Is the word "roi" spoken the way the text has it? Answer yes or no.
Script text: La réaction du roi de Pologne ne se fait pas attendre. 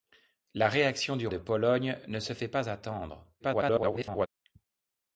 no